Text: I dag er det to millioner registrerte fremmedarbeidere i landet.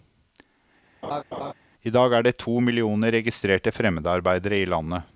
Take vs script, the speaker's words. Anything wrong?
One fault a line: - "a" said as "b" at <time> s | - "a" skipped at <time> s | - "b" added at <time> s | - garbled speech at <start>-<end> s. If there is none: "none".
none